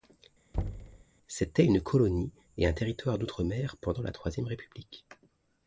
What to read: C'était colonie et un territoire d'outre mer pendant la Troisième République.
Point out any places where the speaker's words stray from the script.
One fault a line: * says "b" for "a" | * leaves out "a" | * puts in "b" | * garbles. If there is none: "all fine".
* puts in "une"